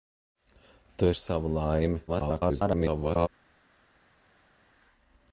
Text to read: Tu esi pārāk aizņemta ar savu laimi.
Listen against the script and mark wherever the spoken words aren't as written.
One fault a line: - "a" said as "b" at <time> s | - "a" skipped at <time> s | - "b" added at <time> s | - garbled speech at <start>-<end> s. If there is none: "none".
- "esi pārāk aizņemta" skipped at 1.1 s
- garbled speech at 2.1-3.3 s